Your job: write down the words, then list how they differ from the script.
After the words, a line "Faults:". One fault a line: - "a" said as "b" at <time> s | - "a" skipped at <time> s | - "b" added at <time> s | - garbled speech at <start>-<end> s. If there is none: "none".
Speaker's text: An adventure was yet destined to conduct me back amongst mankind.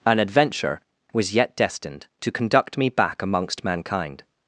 An adventure was yet destined to conduct me back amongst mankind.
Faults:
none